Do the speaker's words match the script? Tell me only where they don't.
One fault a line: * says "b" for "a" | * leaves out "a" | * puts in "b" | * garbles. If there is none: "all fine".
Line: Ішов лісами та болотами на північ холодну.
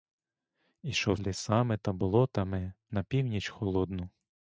all fine